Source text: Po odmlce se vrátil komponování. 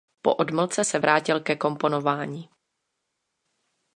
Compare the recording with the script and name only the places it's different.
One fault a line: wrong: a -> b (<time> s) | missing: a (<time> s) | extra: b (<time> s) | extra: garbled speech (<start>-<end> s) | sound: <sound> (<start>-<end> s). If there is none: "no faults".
extra: ke (1.4 s)